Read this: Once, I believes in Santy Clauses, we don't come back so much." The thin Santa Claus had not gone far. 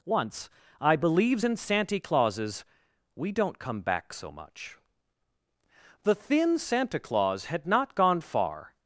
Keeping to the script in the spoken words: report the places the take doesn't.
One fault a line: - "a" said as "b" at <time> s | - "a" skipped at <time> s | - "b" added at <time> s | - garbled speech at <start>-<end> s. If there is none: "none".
none